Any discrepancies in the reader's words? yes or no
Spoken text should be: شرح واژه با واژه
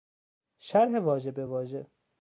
yes